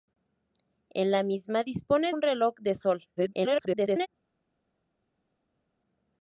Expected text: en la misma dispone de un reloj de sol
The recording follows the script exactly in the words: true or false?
false